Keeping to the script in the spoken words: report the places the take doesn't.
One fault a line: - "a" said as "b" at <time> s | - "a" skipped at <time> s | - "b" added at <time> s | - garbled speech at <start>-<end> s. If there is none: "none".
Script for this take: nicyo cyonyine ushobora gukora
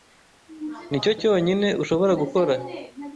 none